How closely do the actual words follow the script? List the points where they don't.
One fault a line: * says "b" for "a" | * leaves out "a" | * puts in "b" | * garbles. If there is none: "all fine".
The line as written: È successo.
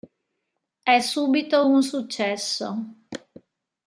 * puts in "subito un"